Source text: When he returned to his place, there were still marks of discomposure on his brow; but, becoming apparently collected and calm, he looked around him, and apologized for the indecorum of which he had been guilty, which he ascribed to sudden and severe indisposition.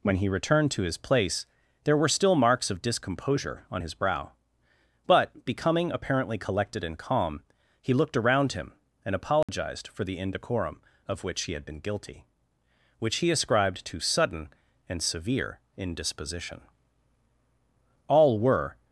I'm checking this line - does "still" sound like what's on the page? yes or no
yes